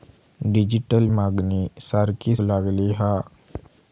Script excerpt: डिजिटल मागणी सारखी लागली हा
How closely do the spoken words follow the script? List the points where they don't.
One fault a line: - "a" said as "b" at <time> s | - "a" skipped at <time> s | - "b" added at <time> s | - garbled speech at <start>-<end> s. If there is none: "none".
none